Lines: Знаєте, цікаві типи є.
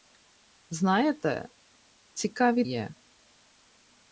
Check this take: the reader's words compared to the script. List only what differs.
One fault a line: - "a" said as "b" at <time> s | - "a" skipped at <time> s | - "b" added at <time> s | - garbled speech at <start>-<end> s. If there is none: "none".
- "типи" skipped at 2.6 s